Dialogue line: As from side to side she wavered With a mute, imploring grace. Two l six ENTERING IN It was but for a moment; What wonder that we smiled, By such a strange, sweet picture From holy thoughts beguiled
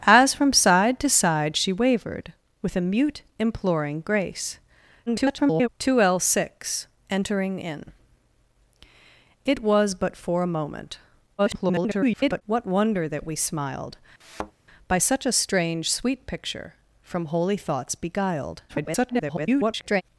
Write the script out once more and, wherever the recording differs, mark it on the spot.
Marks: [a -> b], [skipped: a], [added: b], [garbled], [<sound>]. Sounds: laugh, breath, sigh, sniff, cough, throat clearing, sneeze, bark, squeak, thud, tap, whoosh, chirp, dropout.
As from side to side she wavered With a mute, imploring grace. [garbled] Two l six ENTERING IN It was but for a moment; [garbled] What wonder that we smiled, [thud] By such a strange, sweet picture From holy thoughts beguiled [garbled]